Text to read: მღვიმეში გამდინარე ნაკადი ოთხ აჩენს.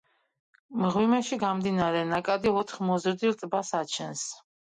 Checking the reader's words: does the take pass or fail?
fail